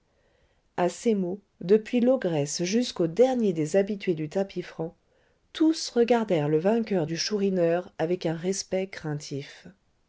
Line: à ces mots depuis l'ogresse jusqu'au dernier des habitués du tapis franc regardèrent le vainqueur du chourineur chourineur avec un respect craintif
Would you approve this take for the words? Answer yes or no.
no